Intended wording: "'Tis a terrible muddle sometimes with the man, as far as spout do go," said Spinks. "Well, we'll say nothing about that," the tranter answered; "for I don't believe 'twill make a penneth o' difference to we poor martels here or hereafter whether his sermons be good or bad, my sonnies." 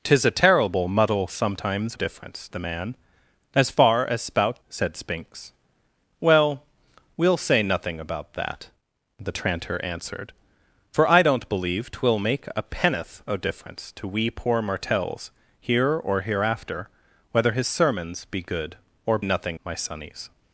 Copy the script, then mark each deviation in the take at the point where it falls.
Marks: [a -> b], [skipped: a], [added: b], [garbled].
"'Tis a terrible muddle sometimes [with -> difference] the man, as far as spout [skipped: do go,"] said Spinks. "Well, we'll say nothing about that," the tranter answered; "for I don't believe 'twill make a penneth o' difference to we poor martels here or hereafter whether his sermons be good or [bad, -> nothing] my sonnies."